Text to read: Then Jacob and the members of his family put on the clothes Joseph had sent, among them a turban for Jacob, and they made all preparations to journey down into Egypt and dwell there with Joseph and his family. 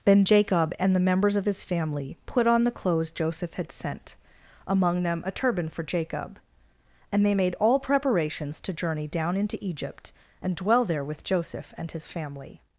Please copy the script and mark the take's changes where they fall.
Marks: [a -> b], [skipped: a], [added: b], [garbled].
Then Jacob and the members of his family put on the clothes Joseph had sent, among them a turban for Jacob, and they made all preparations to journey down into Egypt and dwell there with Joseph and his family.